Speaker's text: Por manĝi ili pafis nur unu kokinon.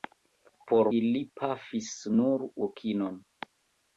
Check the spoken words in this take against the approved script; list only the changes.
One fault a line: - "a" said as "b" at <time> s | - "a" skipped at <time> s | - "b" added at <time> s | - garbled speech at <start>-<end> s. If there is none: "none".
- "manĝi" skipped at 0.9 s
- "unu" skipped at 2.5 s